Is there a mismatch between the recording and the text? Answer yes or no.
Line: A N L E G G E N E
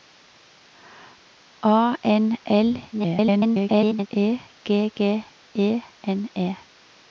yes